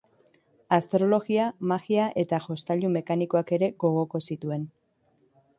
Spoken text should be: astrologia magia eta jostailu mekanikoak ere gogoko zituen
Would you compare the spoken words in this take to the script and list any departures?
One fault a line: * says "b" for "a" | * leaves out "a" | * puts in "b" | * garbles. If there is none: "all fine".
all fine